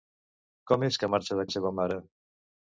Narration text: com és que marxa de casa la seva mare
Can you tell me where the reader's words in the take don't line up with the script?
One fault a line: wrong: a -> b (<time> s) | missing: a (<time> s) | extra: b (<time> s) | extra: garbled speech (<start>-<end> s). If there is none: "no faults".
missing: casa (1.4 s)